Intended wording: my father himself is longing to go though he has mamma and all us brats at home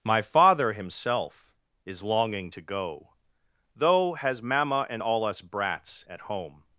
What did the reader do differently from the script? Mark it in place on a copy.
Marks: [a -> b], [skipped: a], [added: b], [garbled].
my father himself is longing to go though [skipped: he] has mamma and all us brats at home